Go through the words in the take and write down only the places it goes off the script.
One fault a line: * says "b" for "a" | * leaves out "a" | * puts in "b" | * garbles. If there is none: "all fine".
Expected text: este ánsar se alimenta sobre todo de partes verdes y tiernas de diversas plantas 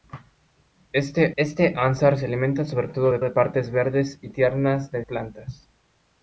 * puts in "este"
* puts in "de"
* leaves out "diversas"